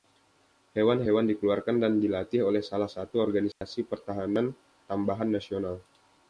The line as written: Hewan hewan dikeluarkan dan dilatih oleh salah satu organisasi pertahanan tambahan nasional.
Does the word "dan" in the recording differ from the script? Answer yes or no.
no